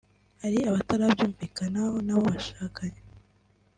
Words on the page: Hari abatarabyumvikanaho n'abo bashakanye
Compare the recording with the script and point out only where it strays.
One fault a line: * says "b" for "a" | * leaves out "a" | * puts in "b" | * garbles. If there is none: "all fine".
all fine